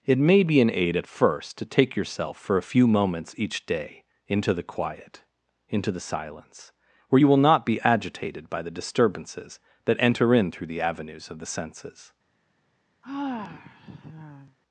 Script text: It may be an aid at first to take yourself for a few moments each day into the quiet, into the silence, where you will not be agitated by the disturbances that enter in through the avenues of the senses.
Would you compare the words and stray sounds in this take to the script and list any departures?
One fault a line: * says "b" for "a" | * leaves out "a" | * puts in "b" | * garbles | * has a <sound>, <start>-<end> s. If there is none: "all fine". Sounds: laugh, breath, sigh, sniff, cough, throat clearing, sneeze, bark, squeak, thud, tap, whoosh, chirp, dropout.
* has a sigh, 13.0-14.6 s